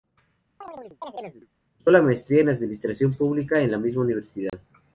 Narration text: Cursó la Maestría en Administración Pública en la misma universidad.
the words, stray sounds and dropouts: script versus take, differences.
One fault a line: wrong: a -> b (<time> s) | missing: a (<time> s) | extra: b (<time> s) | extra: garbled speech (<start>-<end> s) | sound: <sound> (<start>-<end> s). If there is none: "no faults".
sound: chirp (0.6-1.5 s)
sound: dropout (4.5-4.5 s)